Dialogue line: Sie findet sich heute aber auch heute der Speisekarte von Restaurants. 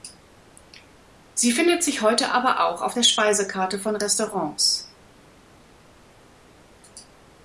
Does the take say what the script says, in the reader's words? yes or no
no